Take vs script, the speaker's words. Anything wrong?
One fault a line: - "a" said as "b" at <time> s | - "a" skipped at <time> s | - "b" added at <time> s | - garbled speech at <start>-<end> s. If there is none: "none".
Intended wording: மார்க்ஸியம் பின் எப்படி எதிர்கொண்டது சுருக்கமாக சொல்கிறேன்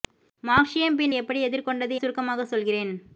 none